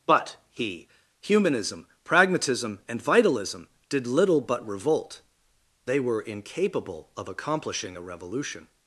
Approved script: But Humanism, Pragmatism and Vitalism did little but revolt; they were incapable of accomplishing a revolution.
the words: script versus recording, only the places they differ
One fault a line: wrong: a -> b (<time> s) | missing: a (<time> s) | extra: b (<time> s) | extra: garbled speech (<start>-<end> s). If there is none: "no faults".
extra: he (0.5 s)